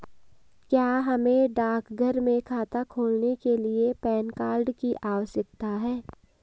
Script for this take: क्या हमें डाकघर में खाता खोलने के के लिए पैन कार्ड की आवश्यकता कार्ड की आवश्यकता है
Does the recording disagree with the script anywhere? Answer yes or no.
yes